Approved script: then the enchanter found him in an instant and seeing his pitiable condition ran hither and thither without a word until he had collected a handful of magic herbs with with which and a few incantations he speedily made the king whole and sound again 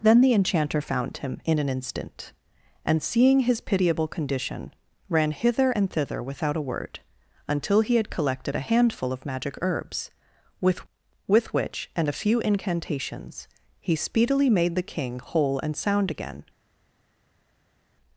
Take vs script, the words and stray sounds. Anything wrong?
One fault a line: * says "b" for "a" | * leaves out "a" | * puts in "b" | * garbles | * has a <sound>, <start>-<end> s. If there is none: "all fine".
all fine